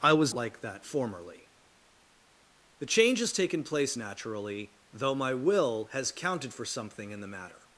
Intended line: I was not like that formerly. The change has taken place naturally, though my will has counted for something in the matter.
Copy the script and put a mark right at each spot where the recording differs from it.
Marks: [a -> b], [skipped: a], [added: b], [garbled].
I was [skipped: not] like that formerly. The change has taken place naturally, though my will has counted for something in the matter.